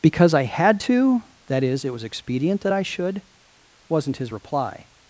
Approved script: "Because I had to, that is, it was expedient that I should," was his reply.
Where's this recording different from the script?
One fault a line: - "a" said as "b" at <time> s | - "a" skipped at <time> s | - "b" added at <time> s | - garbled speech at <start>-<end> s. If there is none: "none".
- "was" said as "wasn't" at 3.9 s